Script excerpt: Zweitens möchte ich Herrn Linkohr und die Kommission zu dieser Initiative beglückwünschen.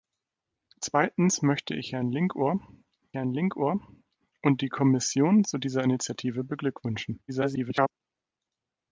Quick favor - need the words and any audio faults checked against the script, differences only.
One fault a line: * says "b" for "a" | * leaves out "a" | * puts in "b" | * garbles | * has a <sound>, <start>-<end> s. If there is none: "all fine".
* puts in "Herrn Linkohr"
* garbles